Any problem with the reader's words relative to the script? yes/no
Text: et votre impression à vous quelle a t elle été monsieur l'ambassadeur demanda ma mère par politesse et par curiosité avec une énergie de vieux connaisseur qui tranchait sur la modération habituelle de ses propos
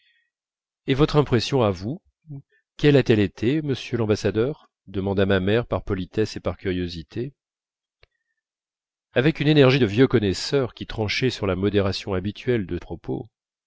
yes